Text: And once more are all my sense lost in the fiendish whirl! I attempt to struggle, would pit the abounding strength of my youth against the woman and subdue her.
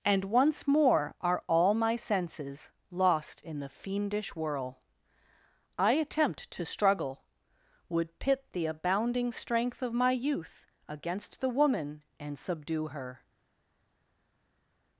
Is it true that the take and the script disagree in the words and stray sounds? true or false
true